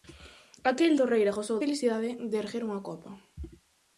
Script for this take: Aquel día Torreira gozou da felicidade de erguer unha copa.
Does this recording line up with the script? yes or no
no